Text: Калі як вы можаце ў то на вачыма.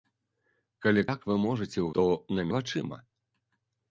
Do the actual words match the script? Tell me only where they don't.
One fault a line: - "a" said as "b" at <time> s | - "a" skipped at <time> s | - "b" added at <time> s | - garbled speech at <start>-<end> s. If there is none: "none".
none